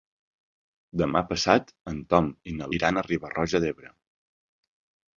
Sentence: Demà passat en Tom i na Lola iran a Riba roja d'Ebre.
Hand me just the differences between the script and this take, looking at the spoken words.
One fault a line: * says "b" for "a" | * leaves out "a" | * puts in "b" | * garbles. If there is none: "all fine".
* leaves out "Lola"